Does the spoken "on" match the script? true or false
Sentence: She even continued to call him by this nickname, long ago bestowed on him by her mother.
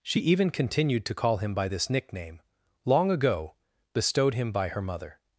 false